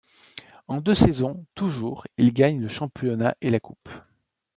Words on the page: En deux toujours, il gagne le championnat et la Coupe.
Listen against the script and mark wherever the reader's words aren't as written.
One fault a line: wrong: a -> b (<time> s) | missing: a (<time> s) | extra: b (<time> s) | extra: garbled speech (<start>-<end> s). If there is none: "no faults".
extra: saisons (0.9 s)